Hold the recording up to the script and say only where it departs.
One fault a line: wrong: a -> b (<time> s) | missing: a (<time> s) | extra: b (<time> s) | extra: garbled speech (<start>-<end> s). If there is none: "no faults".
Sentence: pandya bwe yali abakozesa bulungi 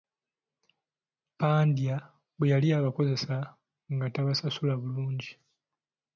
extra: nga tabasasula (3.9 s)